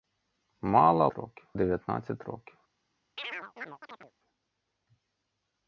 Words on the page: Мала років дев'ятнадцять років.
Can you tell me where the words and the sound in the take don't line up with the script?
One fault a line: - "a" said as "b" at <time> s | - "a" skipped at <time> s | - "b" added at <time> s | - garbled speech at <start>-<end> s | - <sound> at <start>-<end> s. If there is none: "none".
- chirp at 3.2-4.1 s